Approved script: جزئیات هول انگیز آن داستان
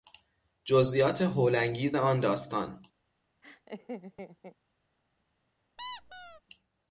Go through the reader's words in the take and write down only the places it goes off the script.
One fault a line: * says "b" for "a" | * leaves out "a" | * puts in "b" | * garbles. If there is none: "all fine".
all fine